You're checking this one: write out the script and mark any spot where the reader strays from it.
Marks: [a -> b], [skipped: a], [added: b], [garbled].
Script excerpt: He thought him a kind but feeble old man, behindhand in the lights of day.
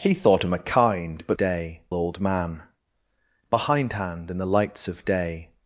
He thought him a kind but [feeble -> day] old man, behindhand in the lights of day.